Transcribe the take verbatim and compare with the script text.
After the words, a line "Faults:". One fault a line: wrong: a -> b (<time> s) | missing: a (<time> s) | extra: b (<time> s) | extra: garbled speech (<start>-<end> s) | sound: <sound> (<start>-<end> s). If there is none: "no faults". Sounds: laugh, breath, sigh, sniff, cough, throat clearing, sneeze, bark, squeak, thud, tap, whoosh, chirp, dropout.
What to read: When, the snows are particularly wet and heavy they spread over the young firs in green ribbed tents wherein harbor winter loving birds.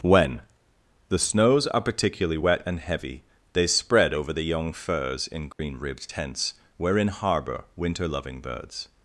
When, the snows are particularly wet and heavy they spread over the young firs in green ribbed tents wherein harbor winter loving birds.
Faults:
sound: dropout (5.5-5.6 s)